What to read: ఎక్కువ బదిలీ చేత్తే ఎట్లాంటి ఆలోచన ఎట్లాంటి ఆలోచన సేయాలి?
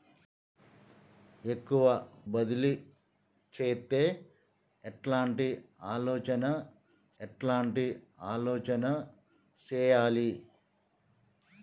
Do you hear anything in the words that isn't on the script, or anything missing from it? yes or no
no